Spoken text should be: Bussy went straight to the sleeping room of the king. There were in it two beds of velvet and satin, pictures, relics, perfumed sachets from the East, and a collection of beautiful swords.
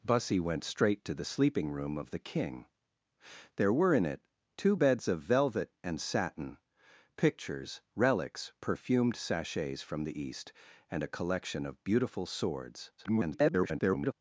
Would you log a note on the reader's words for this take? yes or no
yes